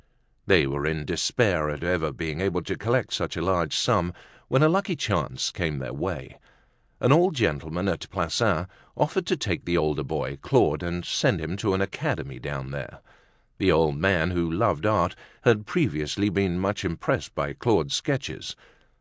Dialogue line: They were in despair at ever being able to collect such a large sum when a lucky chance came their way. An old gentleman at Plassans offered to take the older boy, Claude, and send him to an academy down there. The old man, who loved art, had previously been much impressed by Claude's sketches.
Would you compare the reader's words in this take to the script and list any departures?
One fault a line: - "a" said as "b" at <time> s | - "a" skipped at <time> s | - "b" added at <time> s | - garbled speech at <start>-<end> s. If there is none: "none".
none